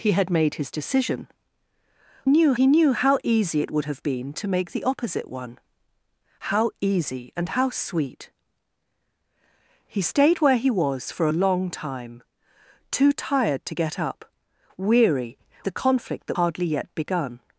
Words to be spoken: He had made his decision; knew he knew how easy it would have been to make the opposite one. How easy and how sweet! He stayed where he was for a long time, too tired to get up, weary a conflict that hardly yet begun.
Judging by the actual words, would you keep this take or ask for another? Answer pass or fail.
pass